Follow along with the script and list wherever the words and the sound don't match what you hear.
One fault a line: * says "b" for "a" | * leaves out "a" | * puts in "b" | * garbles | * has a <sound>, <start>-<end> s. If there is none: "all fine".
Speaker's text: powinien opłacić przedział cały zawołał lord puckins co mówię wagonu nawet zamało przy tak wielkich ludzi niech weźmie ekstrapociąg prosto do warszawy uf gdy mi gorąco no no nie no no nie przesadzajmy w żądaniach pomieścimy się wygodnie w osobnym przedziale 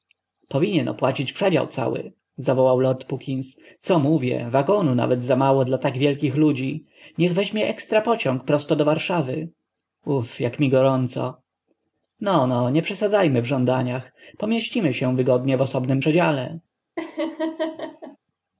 * says "dla" for "przy"
* says "jak" for "gdy"
* leaves out "no no nie"
* has a laugh, 17.0-18.2 s